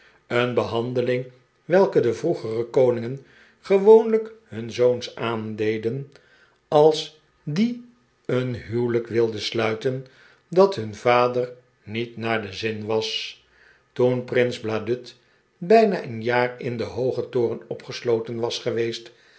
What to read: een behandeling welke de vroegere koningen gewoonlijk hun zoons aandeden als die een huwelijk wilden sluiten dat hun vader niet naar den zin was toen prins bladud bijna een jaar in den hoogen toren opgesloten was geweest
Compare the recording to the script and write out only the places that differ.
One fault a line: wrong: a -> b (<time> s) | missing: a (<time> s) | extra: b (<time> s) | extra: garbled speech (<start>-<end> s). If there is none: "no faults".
no faults